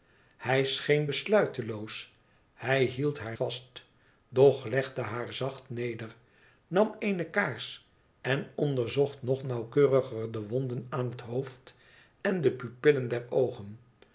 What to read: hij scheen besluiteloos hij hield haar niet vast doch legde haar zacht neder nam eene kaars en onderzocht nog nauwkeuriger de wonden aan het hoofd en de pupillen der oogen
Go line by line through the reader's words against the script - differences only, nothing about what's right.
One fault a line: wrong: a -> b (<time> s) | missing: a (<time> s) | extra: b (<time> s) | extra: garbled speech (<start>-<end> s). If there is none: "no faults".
missing: niet (3.4 s)